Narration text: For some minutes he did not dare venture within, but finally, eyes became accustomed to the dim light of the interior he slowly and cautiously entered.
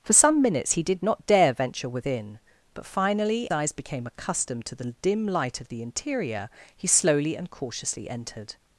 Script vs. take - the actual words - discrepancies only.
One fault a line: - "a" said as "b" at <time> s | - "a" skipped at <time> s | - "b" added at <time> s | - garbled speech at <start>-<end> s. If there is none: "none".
none